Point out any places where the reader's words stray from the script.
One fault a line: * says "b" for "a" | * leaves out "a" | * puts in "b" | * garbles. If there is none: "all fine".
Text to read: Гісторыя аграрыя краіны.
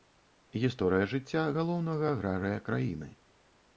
* puts in "жыцця галоўнага"